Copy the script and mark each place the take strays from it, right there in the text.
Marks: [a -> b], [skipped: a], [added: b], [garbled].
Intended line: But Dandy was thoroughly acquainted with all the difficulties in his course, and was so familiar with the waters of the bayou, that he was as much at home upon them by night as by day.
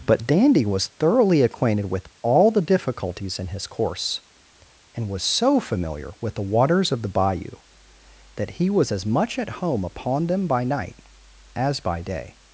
But Dandy was thoroughly acquainted with all the difficulties in his course, and was so familiar with the waters of the bayou, that he was as much at home upon them by night as by day.